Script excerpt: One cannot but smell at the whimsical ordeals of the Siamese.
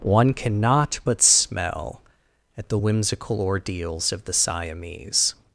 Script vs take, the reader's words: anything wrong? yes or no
no